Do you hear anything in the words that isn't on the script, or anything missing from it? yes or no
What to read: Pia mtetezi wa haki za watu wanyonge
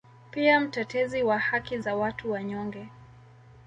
no